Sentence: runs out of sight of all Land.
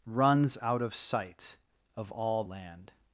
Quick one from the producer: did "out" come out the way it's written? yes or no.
yes